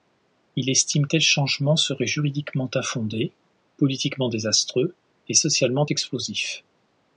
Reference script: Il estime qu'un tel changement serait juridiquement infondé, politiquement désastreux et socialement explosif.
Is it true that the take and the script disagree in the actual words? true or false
true